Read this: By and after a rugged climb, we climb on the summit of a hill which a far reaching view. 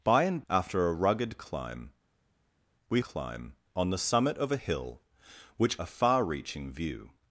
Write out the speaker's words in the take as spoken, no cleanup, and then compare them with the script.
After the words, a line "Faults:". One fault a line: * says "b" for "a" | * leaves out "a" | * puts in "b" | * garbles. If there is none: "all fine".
By and after a rugged climb, we climb on the summit of a hill which a far reaching view.
Faults:
all fine